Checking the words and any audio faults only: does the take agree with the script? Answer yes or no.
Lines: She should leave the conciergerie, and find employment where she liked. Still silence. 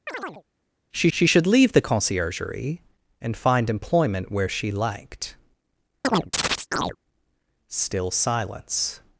no